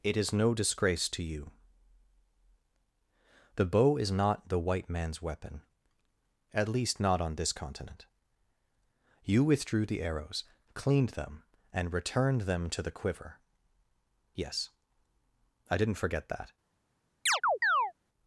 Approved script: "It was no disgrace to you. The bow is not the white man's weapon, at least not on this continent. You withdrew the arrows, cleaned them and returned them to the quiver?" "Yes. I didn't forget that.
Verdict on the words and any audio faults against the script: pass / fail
fail